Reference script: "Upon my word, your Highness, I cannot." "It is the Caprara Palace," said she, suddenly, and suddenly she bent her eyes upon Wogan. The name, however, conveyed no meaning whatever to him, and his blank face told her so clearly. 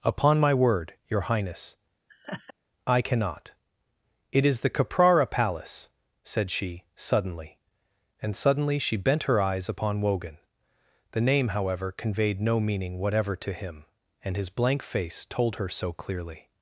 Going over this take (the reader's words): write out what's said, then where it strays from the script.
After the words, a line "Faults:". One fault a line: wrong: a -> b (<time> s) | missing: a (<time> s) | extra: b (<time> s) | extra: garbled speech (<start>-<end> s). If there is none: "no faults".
"Upon my word, your Highness, I cannot." "It is the Caprara Palace," said she, suddenly, and suddenly she bent her eyes upon Wogan. The name, however, conveyed no meaning whatever to him, and his blank face told her so clearly.
Faults:
no faults